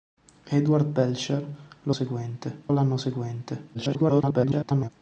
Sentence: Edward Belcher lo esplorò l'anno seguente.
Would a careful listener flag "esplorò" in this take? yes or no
yes